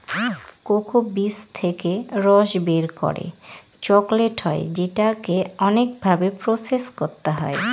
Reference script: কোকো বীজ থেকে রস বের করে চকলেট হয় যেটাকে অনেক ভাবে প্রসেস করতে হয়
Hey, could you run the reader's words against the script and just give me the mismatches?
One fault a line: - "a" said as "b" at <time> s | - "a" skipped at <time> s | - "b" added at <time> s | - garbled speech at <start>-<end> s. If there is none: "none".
none